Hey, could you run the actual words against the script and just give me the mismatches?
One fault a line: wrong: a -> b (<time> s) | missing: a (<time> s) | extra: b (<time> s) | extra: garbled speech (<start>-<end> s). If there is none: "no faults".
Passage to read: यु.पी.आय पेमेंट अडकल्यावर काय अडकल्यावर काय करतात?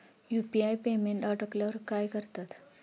missing: अडकल्यावर काय (2.1 s)